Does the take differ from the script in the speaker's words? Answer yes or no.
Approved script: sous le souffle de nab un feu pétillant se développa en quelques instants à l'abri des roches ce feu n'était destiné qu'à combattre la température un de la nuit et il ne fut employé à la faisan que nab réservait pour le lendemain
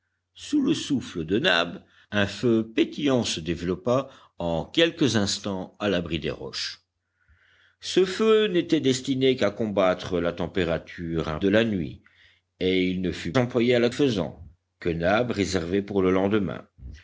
no